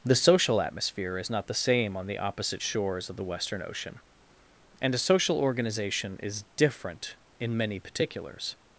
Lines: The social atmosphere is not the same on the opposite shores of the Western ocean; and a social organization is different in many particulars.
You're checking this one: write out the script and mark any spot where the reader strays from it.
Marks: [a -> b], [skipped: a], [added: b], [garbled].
The social atmosphere is not the same on the opposite shores of the Western ocean; and a social organization is different in many particulars.